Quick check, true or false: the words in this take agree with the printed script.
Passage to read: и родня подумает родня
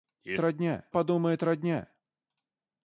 true